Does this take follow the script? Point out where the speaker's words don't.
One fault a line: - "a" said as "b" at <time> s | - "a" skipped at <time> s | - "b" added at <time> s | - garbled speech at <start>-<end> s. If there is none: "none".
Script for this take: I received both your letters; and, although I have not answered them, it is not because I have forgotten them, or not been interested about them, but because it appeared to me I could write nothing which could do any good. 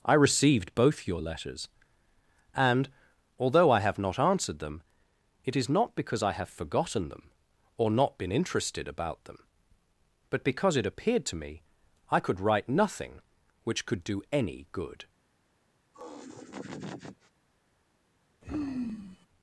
none